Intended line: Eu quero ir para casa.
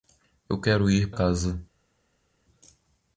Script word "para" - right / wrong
wrong